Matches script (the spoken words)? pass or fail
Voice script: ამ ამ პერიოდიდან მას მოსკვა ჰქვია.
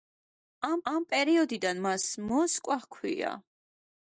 pass